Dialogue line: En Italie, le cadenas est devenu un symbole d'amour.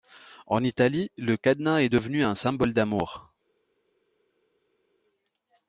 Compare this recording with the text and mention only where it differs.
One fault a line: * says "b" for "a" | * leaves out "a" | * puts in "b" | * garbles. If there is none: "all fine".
all fine